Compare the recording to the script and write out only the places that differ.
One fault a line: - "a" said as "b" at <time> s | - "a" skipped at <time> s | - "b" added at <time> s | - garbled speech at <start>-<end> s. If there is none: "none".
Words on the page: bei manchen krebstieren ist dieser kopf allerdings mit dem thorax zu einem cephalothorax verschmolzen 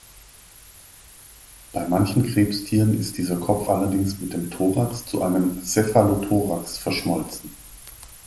none